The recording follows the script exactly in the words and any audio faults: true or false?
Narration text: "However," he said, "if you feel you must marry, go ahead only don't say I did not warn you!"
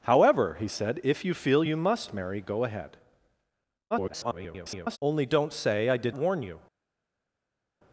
false